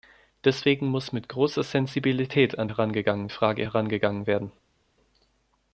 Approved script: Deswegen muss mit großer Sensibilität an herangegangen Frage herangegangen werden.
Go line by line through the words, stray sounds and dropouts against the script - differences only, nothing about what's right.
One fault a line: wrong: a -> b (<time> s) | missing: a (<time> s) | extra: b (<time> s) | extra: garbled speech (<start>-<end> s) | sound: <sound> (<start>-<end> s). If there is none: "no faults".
no faults